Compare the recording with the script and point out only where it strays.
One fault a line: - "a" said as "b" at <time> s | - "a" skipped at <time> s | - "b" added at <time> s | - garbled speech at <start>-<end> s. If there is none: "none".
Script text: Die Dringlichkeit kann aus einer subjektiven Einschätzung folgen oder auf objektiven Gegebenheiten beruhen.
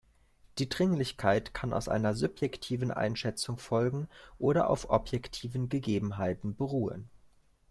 none